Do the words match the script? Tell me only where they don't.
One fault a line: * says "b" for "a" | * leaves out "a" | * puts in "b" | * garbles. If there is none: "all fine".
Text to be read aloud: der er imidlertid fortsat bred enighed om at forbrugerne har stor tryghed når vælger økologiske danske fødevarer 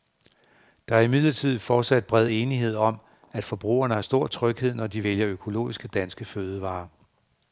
* puts in "de"